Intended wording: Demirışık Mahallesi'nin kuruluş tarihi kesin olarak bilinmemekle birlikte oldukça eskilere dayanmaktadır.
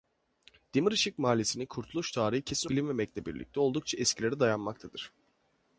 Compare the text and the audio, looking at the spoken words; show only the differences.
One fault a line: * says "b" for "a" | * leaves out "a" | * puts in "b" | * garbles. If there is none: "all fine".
* leaves out "olarak"